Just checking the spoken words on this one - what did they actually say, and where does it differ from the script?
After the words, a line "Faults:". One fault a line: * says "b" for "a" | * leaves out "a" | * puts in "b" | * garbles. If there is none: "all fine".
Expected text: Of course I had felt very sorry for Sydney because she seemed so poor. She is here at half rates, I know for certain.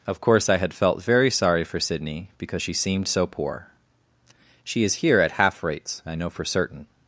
Of course I had felt very sorry for Sydney because she seemed so poor. She is here at half rates, I know for certain.
Faults:
all fine